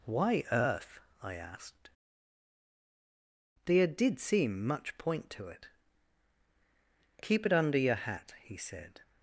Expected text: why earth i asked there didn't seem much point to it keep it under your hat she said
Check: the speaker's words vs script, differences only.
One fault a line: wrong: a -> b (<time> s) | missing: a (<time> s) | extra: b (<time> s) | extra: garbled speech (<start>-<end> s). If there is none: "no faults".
wrong: didn't -> did (3.9 s)
wrong: she -> he (8.4 s)